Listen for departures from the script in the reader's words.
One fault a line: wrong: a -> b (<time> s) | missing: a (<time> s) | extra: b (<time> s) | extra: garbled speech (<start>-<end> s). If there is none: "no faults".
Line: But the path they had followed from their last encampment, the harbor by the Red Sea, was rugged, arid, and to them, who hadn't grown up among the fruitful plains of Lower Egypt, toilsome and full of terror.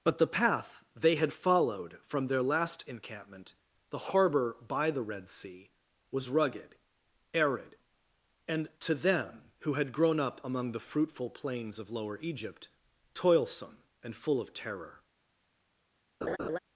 wrong: hadn't -> had (9.7 s)